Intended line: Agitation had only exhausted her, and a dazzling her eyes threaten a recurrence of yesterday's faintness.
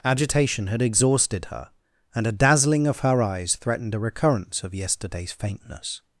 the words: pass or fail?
fail